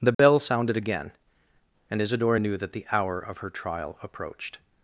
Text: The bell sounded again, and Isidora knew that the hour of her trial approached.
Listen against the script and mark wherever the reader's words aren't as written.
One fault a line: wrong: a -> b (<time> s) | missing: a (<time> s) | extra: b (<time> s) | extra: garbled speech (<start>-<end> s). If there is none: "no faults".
no faults